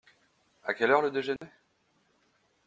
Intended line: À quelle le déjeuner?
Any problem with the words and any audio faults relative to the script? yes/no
yes